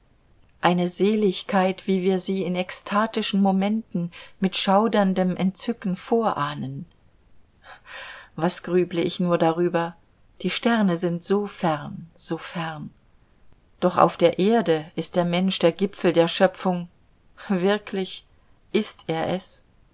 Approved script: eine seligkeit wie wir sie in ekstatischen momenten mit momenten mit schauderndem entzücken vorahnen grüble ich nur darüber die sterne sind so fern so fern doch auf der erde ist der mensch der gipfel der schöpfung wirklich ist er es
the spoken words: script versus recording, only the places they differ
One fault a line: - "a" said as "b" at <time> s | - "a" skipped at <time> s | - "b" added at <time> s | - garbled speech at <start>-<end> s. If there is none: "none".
- "momenten mit" skipped at 4.6 s
- "was" added at 8.3 s